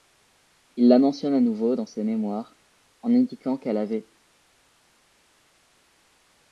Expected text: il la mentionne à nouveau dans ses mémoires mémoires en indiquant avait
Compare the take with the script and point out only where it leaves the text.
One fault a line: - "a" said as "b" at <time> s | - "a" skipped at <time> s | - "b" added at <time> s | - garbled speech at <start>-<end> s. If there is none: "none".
- "mémoires" skipped at 2.6 s
- "qu'elle" added at 3.6 s